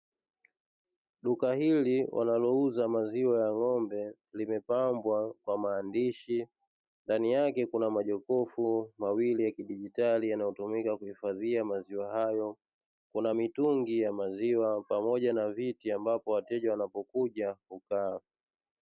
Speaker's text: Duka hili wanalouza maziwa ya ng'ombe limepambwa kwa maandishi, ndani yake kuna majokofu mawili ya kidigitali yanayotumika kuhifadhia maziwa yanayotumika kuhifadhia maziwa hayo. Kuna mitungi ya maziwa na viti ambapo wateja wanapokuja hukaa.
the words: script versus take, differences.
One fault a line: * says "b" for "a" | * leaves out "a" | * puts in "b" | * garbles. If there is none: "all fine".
* leaves out "yanayotumika kuhifadhia maziwa"
* puts in "pamoja"